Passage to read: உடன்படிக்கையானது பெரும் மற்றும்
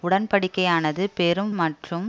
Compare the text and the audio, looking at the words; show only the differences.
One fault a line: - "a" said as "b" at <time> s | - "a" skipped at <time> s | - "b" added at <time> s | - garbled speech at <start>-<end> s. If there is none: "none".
none